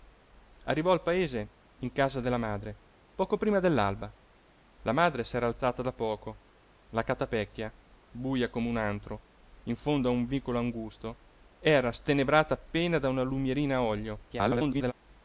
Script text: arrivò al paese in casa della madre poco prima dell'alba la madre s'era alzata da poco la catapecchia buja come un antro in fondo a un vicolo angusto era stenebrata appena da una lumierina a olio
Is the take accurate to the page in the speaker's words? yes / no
no